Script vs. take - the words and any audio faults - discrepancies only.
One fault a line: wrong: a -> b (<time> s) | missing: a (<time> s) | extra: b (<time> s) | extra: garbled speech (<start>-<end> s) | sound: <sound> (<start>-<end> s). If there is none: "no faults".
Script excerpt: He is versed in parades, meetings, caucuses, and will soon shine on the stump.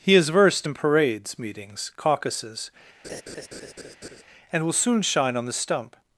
sound: laugh (3.0-4.2 s)